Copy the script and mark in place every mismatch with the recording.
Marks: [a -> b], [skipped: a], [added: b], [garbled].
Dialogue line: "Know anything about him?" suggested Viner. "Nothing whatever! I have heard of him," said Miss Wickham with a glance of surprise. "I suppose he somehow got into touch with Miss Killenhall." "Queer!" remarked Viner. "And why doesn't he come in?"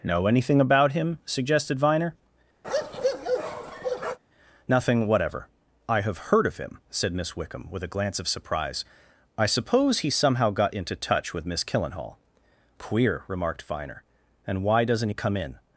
"Know anything about him?" suggested Viner. "Nothing whatever! I have heard of him," said Miss Wickham with a glance of surprise. "I suppose he somehow got into touch with Miss Killenhall." "Queer!" remarked Viner. "And why doesn't he come in?"